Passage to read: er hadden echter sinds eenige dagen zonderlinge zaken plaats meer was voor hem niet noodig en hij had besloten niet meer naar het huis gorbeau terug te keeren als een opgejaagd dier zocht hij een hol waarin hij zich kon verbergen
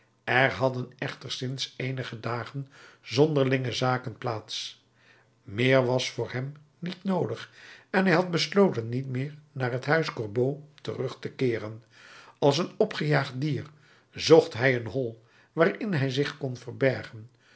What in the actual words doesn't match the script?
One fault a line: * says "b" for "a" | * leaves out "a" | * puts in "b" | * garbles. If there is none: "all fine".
all fine